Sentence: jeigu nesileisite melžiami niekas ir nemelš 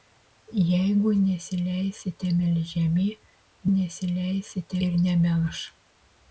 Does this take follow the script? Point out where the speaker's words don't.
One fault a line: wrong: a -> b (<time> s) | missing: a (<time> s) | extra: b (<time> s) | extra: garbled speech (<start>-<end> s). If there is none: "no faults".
wrong: niekas -> nesileisite (3.8 s)